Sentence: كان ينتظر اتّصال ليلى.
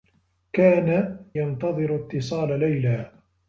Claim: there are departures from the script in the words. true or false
false